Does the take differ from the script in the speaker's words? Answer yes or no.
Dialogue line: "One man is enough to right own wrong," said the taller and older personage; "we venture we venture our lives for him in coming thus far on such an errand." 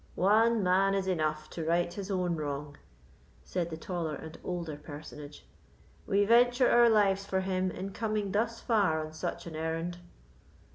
yes